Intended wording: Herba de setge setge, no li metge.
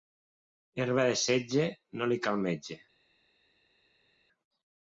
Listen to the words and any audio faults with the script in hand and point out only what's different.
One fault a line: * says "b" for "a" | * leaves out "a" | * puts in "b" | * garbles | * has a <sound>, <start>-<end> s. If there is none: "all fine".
* leaves out "setge"
* puts in "cal"